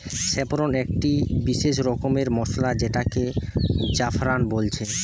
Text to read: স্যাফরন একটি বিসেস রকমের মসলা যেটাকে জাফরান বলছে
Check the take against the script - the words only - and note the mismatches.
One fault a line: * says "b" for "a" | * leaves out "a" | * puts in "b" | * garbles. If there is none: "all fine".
all fine